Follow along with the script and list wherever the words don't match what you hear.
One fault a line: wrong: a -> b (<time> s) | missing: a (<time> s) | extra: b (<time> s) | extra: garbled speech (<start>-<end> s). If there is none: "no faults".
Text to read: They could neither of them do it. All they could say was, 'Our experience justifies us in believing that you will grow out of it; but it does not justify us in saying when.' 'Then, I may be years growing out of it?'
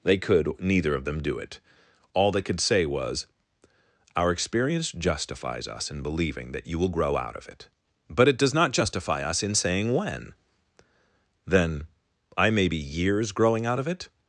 no faults